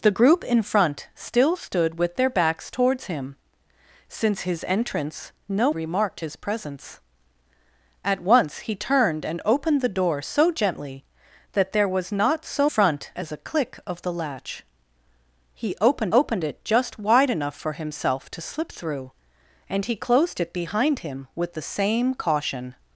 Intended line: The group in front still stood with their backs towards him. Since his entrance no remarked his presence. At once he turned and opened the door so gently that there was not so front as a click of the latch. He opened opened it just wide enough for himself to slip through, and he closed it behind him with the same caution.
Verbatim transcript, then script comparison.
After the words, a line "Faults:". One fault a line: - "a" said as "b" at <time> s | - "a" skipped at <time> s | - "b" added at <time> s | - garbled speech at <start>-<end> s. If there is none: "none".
The group in front still stood with their backs towards him. Since his entrance no remarked his presence. At once he turned and opened the door so gently that there was not so front as a click of the latch. He opened opened it just wide enough for himself to slip through, and he closed it behind him with the same caution.
Faults:
none